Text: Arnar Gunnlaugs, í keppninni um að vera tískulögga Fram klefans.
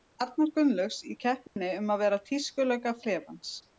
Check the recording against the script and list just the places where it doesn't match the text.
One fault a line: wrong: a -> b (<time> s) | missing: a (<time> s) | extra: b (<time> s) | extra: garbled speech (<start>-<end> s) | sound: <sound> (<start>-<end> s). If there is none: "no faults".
sound: dropout (1.5-1.6 s)
missing: Fram (3.0 s)